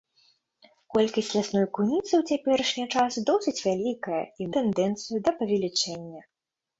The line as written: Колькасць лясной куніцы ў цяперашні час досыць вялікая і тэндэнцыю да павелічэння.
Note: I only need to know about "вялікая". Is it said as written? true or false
true